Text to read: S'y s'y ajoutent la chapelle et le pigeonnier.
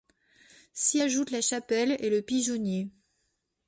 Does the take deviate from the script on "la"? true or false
false